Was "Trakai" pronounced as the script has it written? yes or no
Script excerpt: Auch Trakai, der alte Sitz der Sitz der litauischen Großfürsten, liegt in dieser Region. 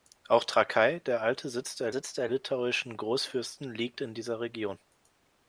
yes